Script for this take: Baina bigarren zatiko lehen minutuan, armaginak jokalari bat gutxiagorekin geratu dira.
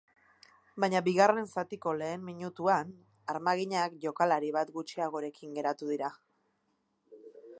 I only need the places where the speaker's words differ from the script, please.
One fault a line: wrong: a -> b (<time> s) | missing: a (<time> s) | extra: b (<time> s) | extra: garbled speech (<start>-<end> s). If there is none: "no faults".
no faults